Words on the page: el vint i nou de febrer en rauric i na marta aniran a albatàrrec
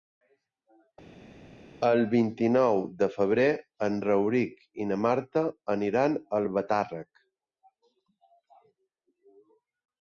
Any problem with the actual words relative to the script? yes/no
no